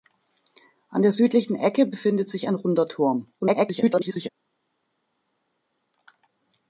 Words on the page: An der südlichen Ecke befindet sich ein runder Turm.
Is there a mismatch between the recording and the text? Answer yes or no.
yes